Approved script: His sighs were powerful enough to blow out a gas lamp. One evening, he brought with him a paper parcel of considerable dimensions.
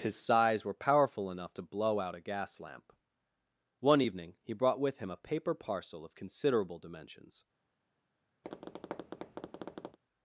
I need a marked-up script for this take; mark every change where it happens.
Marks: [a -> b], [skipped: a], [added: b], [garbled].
His sighs were powerful enough to blow out a gas lamp. One evening, he brought with him a paper parcel of considerable dimensions.